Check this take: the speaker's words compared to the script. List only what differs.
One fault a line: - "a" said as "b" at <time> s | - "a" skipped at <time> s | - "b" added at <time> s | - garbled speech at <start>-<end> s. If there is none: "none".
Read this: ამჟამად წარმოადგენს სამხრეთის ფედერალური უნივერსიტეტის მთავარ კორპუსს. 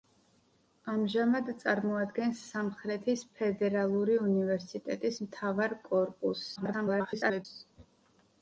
- garbled speech at 6.5-7.5 s